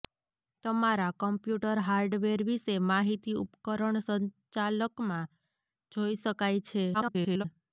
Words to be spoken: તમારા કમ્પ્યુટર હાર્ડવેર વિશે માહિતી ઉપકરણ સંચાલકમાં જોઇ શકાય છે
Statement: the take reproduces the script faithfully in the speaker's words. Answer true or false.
false